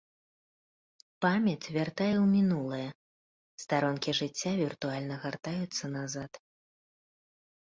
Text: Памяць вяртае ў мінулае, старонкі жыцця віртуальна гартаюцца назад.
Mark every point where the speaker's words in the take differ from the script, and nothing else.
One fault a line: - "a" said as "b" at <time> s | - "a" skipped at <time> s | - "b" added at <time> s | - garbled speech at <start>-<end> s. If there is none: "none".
none